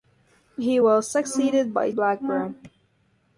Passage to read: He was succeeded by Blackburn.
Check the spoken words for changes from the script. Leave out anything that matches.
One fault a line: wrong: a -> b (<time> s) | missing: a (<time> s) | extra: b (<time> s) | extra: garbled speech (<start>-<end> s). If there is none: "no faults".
no faults